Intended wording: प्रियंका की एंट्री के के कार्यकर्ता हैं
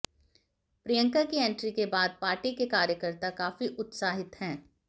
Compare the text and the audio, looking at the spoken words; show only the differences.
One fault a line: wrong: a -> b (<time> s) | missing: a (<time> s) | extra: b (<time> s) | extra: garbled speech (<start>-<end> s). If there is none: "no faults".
extra: बाद पार्टी (1.9 s)
extra: काफी उत्साहित (3.3 s)